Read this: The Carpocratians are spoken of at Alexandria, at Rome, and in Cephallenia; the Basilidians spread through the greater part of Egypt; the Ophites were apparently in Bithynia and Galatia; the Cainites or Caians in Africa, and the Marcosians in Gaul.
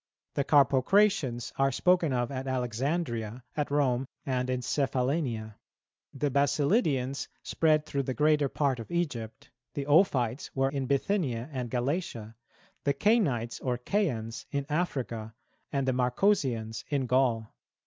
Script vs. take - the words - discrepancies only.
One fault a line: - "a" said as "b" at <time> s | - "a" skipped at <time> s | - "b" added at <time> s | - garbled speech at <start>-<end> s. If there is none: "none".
- "apparently" skipped at 10.7 s